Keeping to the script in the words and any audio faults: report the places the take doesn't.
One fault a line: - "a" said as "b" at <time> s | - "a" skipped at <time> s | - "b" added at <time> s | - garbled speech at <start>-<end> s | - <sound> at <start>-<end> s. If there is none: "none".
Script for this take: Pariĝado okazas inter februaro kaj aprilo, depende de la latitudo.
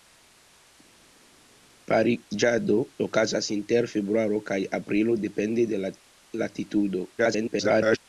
- garbled speech at 7.2-8.0 s